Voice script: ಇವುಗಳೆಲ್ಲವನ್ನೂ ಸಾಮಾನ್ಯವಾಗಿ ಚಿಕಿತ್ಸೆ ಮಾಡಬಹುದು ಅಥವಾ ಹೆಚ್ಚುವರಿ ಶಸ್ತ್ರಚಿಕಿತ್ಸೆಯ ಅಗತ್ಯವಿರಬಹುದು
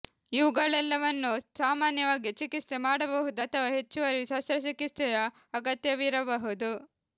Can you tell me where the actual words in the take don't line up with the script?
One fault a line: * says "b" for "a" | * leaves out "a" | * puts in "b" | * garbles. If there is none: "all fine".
all fine